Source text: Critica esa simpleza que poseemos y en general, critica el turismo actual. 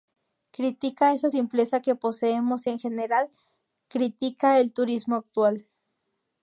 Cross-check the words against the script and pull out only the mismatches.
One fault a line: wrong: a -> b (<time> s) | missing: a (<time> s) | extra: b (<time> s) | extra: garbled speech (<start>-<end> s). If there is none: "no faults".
no faults